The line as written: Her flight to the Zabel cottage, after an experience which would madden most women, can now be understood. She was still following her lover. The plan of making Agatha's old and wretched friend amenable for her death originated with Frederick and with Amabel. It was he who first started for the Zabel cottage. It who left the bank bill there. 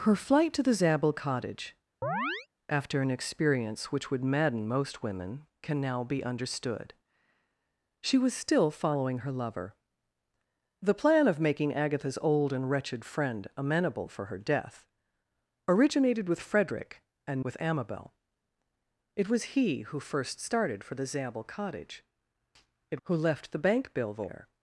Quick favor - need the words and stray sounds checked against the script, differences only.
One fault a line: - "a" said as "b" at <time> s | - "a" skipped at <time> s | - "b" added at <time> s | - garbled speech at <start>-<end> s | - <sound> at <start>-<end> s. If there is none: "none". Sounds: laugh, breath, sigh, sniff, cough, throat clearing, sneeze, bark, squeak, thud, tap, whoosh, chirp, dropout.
- chirp at 2.0-2.5 s